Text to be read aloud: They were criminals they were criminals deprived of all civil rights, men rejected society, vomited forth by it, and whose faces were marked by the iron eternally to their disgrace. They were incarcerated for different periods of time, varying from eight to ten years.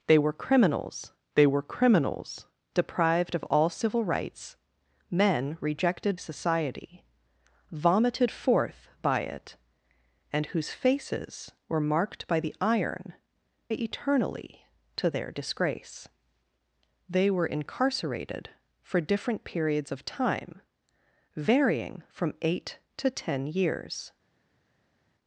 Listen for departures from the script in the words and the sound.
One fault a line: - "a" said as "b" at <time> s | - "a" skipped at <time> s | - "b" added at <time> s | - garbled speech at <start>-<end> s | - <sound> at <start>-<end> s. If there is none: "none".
none